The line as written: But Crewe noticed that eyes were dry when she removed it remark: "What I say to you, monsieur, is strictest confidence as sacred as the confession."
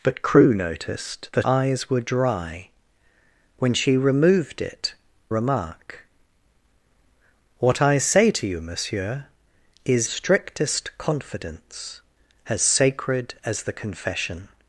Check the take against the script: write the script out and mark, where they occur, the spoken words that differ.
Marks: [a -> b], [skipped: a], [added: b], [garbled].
But Crewe noticed that eyes were dry when she removed it remark: "What I say to you, monsieur, is strictest confidence as sacred as the confession."